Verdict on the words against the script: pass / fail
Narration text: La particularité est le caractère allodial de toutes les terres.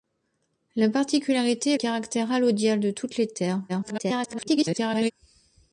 fail